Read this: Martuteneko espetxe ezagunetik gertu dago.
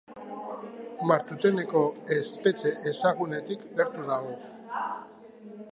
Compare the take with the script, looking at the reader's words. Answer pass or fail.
pass